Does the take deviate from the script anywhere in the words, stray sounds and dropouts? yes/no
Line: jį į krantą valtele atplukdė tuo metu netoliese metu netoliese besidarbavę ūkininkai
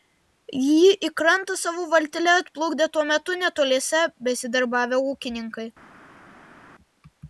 yes